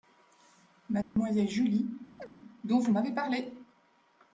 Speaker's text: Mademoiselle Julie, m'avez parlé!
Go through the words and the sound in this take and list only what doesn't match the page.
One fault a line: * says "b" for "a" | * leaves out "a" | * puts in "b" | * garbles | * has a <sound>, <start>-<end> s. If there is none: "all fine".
* has a dropout, 1.0-1.2 s
* has a chirp, 2.2-2.3 s
* puts in "dont vous"